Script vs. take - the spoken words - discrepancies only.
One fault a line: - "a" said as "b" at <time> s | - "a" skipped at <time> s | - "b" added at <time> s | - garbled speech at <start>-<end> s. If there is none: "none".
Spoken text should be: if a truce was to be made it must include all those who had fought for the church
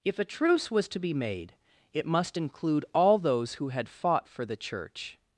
none